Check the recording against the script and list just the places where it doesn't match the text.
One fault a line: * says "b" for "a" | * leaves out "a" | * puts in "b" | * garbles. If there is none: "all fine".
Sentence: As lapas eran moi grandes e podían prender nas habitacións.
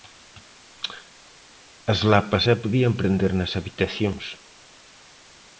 * leaves out "eran moi grandes"